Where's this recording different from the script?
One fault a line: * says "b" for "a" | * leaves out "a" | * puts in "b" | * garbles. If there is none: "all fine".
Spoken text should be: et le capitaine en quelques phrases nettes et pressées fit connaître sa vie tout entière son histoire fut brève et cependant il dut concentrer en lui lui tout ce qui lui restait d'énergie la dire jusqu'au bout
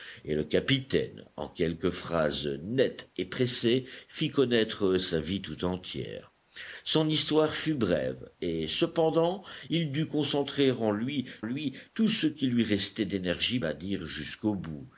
all fine